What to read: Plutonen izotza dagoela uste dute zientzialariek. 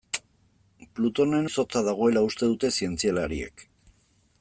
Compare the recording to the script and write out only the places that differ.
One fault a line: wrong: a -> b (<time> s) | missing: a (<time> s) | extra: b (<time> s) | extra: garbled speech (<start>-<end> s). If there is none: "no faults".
no faults